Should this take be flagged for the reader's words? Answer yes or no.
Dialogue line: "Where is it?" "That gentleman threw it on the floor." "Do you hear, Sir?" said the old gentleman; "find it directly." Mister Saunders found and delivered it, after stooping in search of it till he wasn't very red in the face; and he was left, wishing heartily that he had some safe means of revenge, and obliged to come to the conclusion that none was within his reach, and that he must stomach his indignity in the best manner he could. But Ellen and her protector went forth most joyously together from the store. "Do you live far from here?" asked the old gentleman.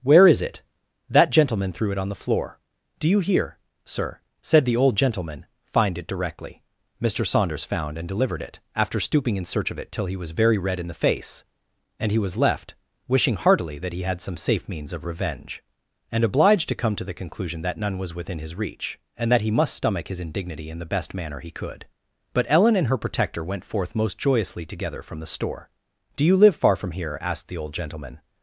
yes